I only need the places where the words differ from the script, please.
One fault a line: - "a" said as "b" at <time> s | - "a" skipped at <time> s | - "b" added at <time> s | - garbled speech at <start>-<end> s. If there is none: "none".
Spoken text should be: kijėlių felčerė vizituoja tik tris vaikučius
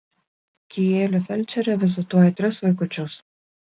- "tik" skipped at 2.3 s